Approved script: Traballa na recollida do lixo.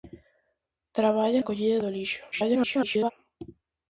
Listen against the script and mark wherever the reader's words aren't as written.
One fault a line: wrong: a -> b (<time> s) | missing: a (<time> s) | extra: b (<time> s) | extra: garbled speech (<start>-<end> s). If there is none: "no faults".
missing: na (1.4 s)
extra: garbled speech (2.3-3.1 s)